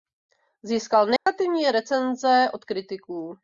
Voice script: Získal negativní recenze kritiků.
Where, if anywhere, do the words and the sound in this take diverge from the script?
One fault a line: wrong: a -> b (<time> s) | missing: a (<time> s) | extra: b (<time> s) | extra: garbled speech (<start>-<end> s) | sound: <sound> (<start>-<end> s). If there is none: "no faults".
sound: dropout (1.2-1.3 s)
extra: od (2.5 s)